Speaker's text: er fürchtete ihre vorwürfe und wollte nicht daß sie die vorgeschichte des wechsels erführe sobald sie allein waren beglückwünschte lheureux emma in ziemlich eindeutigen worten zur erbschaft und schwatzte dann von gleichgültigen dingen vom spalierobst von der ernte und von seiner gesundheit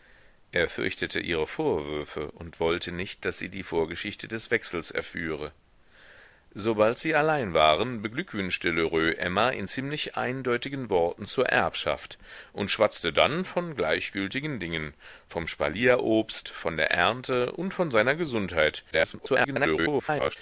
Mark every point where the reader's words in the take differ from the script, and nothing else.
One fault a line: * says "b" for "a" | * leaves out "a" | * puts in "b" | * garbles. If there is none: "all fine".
* garbles